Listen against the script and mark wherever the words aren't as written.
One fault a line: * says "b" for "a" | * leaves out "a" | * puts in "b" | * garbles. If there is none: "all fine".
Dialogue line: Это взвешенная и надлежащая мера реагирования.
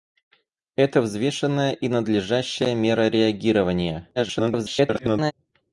* garbles